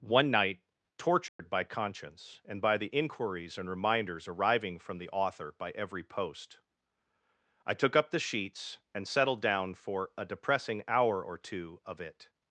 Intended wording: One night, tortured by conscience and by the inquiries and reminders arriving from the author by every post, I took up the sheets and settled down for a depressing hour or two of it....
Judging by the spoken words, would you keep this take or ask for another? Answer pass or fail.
pass